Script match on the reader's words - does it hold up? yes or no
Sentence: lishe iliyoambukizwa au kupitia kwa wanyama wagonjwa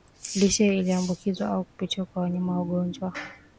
yes